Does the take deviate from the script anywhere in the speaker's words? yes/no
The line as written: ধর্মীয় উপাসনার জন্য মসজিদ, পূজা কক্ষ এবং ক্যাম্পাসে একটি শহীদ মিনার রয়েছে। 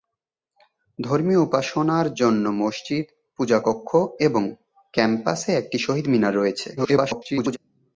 yes